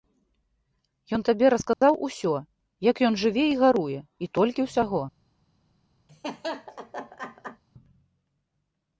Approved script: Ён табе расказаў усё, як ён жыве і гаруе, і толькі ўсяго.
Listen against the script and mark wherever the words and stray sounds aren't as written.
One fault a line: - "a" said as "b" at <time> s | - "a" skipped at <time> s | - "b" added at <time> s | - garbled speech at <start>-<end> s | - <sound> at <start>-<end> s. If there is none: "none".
- dropout at 1.7-1.8 s
- laugh at 6.1-7.6 s